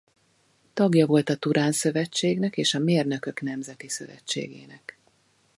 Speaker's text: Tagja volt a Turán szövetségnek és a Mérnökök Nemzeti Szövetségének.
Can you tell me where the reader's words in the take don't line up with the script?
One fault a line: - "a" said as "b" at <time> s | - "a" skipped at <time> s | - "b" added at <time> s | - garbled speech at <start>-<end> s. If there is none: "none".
none